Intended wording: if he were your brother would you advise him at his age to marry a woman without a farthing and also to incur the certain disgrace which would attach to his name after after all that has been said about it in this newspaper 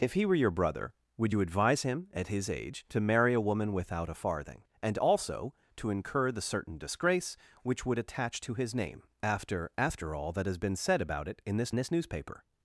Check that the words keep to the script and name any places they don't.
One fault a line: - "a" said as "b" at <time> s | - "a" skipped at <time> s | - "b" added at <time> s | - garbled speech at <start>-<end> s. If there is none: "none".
- "this" added at 11.7 s